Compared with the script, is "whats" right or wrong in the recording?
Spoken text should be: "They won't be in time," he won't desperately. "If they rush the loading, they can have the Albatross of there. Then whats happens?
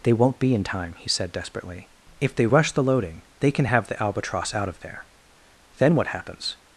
wrong